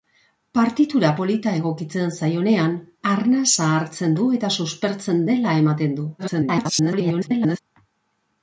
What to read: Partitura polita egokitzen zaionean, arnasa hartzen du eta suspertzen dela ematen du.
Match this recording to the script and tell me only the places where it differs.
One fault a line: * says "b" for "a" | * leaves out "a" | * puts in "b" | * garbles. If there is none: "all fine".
* garbles